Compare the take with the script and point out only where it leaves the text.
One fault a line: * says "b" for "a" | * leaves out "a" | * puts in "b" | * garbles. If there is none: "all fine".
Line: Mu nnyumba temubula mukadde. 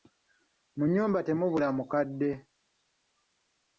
all fine